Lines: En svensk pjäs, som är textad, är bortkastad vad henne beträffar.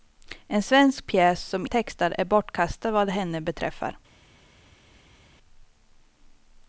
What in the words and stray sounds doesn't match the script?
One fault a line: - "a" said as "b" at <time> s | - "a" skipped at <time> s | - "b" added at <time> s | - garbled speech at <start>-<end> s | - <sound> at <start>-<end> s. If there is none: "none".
none